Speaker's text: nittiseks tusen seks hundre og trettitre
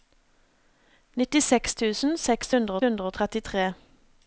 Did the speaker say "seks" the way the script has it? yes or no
yes